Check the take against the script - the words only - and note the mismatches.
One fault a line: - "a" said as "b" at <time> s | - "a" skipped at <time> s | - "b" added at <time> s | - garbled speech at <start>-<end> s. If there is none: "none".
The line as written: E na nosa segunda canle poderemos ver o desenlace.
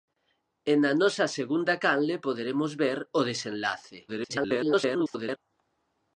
- garbled speech at 4.1-5.4 s